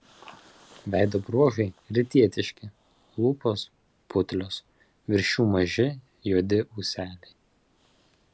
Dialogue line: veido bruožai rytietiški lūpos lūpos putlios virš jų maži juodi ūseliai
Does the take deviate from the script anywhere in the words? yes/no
yes